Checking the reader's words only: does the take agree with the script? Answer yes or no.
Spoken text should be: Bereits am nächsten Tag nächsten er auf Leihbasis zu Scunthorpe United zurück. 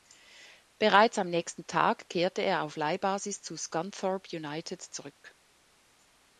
no